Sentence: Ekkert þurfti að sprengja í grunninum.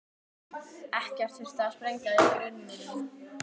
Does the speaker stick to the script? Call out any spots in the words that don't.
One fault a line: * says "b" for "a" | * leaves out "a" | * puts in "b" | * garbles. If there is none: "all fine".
all fine